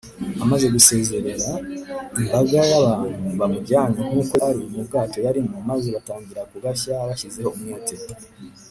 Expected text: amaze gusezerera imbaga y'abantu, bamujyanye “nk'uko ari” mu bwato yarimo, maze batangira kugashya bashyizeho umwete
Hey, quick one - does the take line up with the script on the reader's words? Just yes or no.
yes